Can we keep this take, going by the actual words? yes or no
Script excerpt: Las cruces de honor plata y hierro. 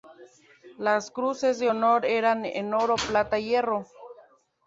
no